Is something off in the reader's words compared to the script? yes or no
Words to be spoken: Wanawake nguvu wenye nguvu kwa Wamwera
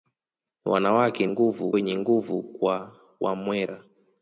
no